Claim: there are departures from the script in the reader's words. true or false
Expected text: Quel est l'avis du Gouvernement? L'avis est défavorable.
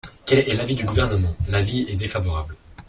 false